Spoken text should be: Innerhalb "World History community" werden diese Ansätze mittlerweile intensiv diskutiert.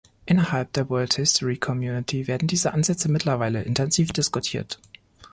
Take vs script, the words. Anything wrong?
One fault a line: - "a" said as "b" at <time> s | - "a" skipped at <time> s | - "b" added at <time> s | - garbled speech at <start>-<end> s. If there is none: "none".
- "der" added at 0.7 s